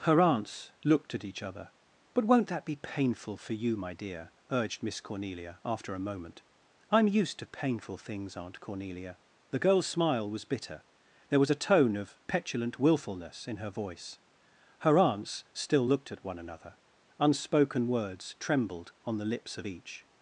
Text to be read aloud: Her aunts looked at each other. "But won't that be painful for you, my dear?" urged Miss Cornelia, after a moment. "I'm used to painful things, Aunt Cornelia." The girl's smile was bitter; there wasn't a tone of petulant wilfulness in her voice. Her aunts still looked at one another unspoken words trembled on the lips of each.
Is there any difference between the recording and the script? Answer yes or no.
yes